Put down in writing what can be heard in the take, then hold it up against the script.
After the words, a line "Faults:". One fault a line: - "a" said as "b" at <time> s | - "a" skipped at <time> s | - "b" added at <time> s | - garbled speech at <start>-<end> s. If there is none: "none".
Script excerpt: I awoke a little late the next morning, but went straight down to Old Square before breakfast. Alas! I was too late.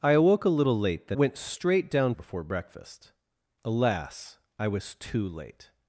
I awoke a little late the went straight down before breakfast. Alas! I was too late.
Faults:
- "next morning but" skipped at 1.1 s
- "to Old Square" skipped at 2.2 s